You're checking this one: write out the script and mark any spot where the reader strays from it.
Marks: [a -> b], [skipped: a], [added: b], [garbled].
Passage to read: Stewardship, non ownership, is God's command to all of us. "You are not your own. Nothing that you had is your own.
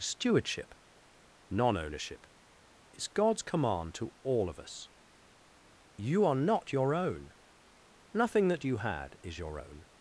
Stewardship, non ownership, is God's command to all of us. "You are not your own. Nothing that you had is your own.